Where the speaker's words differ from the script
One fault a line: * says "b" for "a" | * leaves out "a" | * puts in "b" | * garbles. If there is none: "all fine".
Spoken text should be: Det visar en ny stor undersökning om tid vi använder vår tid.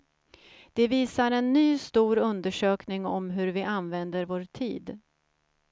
* says "hur" for "tid"